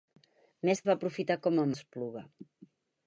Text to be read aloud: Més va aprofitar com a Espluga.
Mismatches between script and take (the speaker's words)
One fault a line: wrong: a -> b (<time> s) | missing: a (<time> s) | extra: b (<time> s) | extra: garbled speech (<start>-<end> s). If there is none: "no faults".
no faults